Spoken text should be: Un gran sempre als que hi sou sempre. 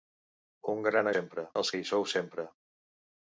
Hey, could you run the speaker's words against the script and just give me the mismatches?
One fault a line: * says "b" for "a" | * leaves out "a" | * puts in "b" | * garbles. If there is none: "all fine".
all fine